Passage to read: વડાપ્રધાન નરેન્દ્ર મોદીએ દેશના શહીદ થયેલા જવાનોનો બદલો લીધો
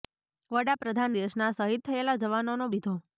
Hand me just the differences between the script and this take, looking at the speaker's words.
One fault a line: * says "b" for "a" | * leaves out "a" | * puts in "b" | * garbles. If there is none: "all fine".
* leaves out "નરેન્દ્ર મોદીએ"
* leaves out "બદલો"